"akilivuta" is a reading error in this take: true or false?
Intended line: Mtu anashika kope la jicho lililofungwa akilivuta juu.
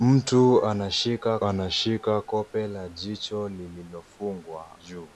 true